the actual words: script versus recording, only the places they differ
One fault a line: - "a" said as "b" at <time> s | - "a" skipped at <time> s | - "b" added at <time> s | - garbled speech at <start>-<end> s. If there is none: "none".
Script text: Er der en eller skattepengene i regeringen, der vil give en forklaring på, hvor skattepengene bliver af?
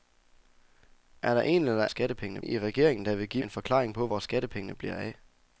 none